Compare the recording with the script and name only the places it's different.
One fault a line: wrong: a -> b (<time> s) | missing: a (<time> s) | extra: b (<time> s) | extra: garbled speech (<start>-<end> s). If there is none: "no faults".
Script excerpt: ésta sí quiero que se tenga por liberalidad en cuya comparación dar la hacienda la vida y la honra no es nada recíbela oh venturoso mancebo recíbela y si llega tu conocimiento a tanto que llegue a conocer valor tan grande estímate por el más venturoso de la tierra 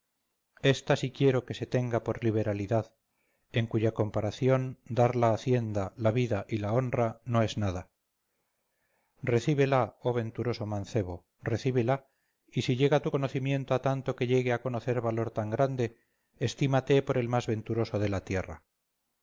no faults